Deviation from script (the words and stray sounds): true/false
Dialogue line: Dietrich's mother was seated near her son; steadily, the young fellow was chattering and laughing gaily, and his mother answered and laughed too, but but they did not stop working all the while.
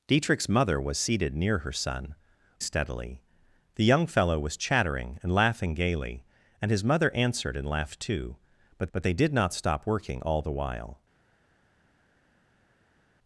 false